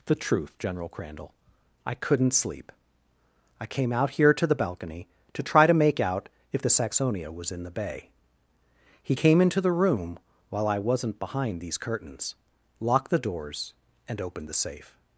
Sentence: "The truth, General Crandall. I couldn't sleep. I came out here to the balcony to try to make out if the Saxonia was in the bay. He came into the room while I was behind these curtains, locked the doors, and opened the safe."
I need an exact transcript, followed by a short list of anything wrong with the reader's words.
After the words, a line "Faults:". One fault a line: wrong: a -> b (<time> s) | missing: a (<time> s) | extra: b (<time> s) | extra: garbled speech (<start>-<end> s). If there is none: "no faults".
"The truth, General Crandall. I couldn't sleep. I came out here to the balcony to try to make out if the Saxonia was in the bay. He came into the room while I wasn't behind these curtains, locked the doors, and opened the safe."
Faults:
wrong: was -> wasn't (10.8 s)